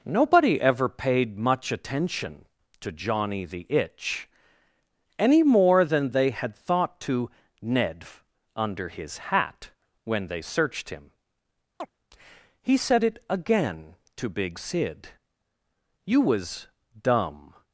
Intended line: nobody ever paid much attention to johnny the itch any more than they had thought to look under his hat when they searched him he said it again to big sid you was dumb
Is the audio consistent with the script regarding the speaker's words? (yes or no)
no